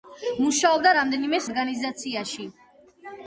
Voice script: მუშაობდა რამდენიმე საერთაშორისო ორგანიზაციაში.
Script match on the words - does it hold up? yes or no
no